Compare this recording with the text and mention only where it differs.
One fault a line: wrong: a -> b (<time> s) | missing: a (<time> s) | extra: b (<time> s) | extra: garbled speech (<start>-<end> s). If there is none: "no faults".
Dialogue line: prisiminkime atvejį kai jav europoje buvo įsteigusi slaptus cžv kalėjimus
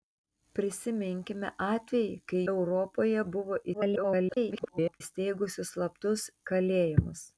missing: jav (2.4 s)
extra: garbled speech (3.7-5.0 s)
missing: cžv (6.3 s)